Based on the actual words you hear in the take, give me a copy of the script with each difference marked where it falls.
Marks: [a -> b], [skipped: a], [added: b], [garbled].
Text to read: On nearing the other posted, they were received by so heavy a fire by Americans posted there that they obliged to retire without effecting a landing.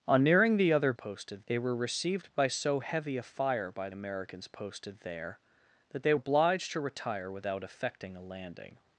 On nearing the other posted, they were received by so heavy a fire by Americans posted there that they obliged to retire without effecting a landing.